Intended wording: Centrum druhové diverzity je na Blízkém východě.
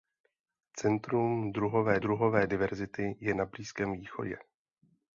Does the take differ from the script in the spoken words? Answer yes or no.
yes